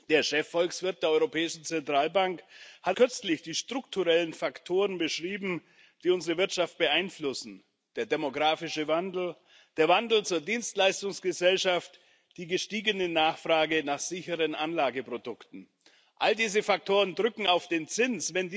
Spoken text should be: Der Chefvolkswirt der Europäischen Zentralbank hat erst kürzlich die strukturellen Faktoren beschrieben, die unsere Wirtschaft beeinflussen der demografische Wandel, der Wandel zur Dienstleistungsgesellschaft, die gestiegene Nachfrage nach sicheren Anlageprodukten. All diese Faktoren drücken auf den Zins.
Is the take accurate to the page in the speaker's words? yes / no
no